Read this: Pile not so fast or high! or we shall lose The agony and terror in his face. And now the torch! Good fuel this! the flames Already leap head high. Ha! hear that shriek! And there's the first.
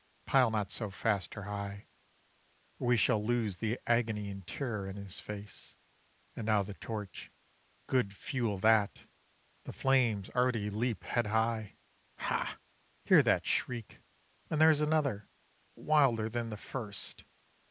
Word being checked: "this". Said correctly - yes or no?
no